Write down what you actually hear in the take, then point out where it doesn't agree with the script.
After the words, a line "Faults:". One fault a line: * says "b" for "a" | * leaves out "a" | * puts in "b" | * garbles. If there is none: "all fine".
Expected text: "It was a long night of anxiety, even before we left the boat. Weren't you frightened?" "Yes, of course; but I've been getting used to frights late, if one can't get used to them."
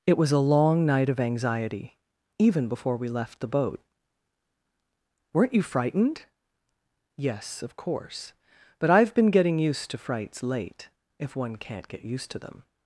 "It was a long night of anxiety, even before we left the boat. Weren't you frightened?" "Yes, of course; but I've been getting used to frights late, if one can't get used to them."
Faults:
all fine